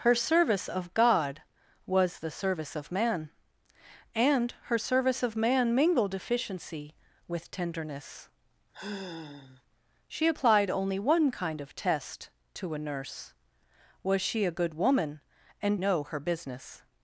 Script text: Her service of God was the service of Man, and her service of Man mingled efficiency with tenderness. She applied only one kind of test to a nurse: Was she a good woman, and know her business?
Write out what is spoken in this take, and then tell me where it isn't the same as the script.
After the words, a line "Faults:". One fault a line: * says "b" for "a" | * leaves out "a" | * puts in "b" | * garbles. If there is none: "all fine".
Her service of God was the service of Man, and her service of Man mingled efficiency with tenderness. She applied only one kind of test to a nurse: Was she a good woman, and know her business?
Faults:
all fine